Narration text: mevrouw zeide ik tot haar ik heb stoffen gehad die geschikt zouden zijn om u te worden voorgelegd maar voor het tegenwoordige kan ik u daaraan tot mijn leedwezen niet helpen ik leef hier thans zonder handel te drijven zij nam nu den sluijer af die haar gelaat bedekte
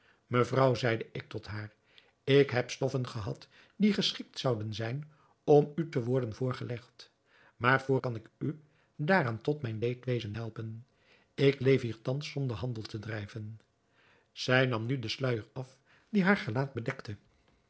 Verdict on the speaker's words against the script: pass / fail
fail